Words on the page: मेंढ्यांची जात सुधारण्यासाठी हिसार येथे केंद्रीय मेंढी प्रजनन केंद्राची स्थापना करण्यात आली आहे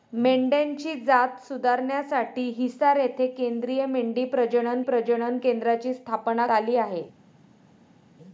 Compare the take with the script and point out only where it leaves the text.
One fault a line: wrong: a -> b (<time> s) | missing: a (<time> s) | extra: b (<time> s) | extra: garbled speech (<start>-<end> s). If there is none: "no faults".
extra: प्रजनन (4.8 s)
missing: करण्यात (6.5 s)